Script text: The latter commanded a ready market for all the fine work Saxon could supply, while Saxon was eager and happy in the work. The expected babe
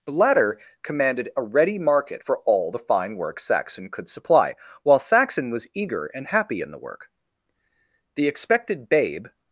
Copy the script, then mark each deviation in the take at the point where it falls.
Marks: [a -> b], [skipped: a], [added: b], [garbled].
The latter commanded a ready market for all the fine work Saxon could supply, while Saxon was eager and happy in the work. The expected babe